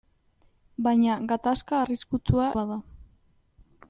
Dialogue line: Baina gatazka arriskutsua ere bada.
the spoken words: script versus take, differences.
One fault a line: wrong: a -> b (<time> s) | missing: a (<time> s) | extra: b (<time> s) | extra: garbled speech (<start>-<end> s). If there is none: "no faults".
missing: ere (2.5 s)